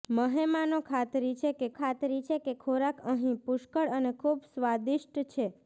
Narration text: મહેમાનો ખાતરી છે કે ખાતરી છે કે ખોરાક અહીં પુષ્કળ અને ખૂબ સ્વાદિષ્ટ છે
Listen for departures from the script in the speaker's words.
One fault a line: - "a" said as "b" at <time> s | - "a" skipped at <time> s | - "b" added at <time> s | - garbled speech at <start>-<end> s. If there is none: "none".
none